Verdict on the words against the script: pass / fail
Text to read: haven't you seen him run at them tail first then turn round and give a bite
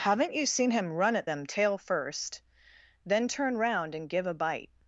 pass